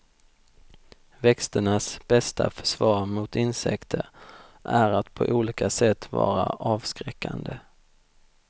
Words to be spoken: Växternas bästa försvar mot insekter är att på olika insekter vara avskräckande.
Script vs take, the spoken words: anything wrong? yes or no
yes